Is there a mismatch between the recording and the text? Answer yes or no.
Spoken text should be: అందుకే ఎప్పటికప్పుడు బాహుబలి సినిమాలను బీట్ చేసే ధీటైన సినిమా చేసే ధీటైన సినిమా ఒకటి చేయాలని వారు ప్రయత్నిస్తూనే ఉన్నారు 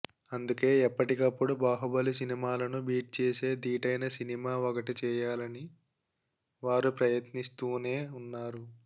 yes